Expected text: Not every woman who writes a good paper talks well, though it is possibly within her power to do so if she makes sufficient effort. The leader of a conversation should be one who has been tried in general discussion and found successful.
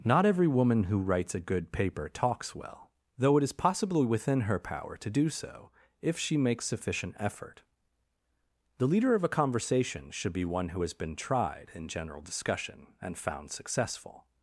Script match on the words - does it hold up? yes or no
yes